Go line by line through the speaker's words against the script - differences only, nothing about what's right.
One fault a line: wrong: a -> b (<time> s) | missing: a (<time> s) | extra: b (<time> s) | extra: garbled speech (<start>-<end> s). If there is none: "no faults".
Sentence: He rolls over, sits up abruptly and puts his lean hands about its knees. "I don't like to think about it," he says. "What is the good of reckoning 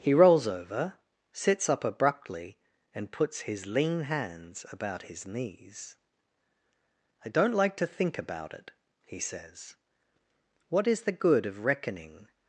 wrong: its -> his (5.0 s)